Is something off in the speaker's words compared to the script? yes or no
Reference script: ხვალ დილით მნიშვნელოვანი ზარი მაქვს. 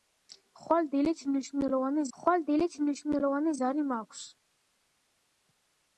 yes